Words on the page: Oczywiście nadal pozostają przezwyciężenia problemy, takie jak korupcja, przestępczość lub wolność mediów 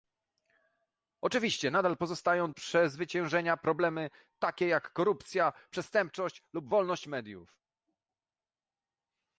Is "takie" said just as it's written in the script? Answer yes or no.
yes